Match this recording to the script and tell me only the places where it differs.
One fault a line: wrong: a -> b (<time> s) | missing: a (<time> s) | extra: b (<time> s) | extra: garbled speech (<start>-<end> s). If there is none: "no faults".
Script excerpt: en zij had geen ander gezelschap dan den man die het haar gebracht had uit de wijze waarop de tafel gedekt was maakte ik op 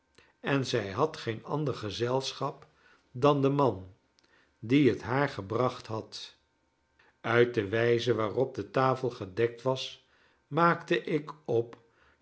no faults